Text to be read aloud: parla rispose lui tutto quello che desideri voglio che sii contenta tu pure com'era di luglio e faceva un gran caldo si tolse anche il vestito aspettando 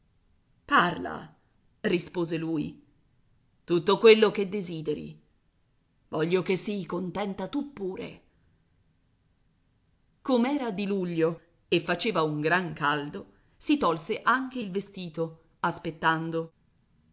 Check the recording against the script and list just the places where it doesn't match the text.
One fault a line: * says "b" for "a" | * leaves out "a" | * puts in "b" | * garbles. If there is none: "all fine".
all fine